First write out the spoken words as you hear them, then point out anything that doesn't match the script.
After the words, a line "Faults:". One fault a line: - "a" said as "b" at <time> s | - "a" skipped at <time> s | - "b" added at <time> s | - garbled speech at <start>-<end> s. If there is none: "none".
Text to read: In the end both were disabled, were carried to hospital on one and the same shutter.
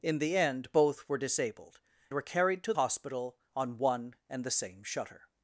In the end both were disabled, were carried to hospital on one and the same shutter.
Faults:
none